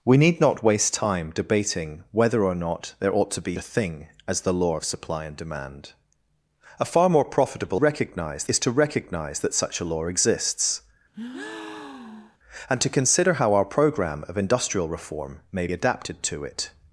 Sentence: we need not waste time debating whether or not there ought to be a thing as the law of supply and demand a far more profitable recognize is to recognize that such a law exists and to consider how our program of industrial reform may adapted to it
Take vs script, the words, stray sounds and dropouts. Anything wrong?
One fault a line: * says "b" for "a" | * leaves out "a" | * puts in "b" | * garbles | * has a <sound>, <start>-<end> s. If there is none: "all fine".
* has a breath, 11.1-12.4 s